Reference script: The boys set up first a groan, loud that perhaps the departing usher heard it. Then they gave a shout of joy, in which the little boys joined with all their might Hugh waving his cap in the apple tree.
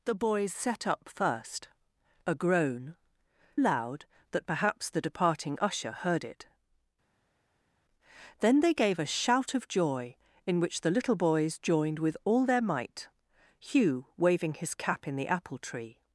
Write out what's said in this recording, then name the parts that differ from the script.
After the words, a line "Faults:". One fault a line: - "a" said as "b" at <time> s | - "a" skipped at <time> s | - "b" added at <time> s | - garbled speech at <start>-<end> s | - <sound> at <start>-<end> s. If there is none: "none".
The boys set up first a groan, loud that perhaps the departing usher heard it. Then they gave a shout of joy, in which the little boys joined with all their might Hugh waving his cap in the apple tree.
Faults:
none